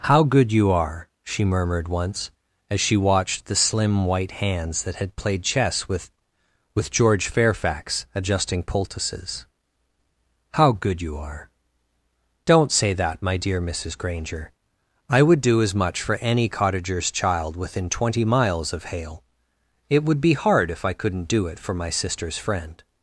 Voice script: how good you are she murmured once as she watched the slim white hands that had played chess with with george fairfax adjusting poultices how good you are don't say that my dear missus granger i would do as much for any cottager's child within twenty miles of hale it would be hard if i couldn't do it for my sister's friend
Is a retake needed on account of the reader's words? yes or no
no